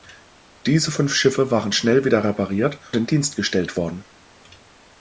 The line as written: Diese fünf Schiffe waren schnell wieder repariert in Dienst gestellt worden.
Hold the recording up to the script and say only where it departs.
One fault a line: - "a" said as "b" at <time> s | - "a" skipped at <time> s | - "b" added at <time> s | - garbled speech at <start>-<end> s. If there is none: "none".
none